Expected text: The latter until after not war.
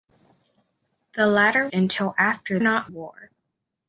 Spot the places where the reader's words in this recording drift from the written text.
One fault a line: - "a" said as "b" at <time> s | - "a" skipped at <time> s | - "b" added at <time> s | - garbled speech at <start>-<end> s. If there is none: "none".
none